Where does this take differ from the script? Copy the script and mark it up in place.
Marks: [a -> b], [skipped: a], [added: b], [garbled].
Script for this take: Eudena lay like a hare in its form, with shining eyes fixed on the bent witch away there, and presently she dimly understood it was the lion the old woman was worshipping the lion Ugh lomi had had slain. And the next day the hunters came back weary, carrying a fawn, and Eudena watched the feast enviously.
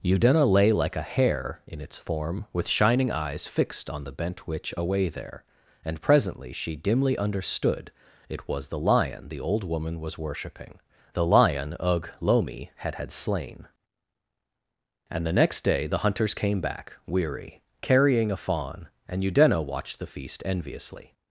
Eudena lay like a hare in its form, with shining eyes fixed on the bent witch away there, and presently she dimly understood it was the lion the old woman was worshipping the lion Ugh lomi had had slain. And the next day the hunters came back weary, carrying a fawn, and Eudena watched the feast enviously.